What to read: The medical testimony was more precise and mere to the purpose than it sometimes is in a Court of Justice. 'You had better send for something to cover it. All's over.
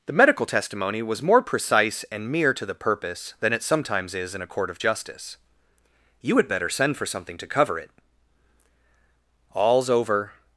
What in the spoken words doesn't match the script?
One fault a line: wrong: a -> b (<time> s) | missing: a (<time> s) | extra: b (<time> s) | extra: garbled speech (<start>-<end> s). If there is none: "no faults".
no faults